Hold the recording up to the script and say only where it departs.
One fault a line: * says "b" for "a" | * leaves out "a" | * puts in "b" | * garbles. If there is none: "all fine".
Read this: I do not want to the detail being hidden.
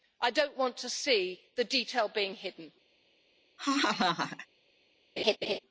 * puts in "see"